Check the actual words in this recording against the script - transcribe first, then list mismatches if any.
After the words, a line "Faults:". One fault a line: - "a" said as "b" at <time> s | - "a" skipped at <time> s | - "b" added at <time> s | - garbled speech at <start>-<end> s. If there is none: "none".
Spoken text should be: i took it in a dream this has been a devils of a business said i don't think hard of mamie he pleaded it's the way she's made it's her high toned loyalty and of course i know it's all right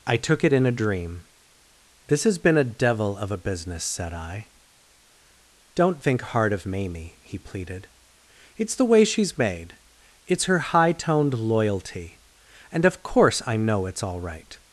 i took it in a dream this has been a devil of a business said i don't think hard of mamie he pleaded it's the way she's made it's her high toned loyalty and of course i know it's all right
Faults:
- "devils" said as "devil" at 2.6 s